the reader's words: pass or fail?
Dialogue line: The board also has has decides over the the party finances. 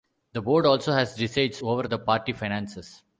fail